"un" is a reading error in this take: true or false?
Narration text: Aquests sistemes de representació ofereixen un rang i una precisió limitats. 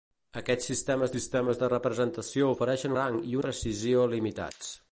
true